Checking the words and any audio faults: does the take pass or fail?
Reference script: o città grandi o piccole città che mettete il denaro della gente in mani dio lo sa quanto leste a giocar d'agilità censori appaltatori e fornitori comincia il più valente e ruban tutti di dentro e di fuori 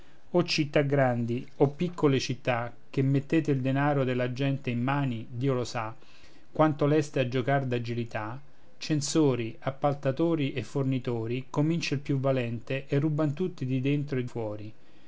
fail